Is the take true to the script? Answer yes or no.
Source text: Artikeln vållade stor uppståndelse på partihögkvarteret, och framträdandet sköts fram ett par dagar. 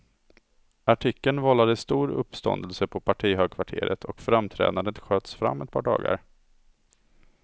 yes